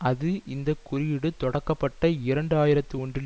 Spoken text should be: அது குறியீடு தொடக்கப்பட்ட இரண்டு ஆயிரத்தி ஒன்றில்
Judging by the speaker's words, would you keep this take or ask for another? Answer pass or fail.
fail